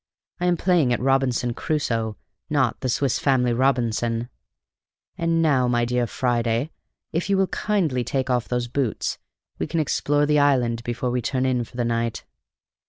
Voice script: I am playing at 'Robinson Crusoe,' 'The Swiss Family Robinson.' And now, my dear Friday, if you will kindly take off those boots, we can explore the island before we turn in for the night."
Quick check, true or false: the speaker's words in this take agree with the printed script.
false